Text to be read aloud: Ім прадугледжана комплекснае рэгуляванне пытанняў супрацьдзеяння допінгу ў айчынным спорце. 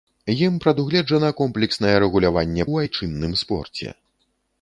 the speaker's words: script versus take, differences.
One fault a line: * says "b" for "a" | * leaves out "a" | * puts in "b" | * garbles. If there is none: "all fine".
* leaves out "пытанняў супрацьдзеяння допінгу"